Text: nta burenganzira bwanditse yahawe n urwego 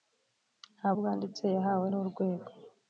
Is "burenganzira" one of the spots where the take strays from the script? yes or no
yes